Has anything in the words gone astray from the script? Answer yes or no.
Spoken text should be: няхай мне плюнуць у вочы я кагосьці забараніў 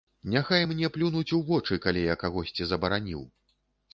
yes